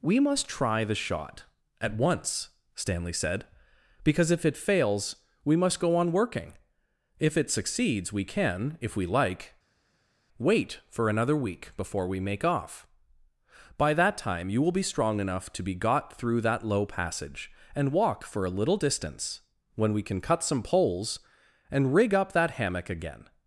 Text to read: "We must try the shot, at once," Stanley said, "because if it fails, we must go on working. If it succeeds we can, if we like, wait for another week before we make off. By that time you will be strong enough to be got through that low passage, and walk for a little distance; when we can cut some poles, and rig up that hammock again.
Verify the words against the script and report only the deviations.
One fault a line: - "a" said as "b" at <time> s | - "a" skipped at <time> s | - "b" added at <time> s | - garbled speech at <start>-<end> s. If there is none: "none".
none